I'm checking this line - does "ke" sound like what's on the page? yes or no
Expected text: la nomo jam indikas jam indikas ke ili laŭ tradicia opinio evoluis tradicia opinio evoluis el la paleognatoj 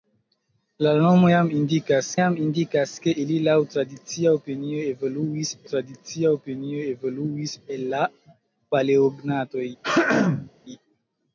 yes